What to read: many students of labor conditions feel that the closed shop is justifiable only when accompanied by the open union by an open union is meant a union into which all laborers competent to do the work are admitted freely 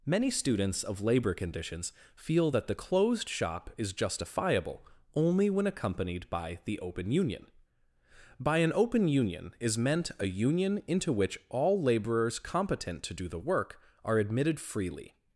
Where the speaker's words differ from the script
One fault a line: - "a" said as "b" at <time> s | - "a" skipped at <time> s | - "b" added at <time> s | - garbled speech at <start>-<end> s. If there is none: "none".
none